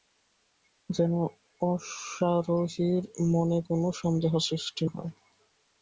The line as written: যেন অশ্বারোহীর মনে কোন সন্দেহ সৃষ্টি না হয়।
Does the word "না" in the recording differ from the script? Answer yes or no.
yes